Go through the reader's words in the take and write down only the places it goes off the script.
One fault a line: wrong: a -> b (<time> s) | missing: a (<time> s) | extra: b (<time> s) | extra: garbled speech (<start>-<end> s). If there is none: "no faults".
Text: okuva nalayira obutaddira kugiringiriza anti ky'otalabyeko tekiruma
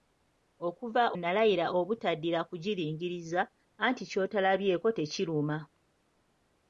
no faults